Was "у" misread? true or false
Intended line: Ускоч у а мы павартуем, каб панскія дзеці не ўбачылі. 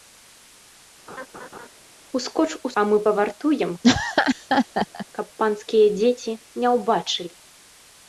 false